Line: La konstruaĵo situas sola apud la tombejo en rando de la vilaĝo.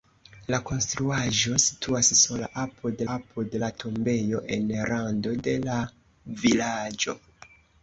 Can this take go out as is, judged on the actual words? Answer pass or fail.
fail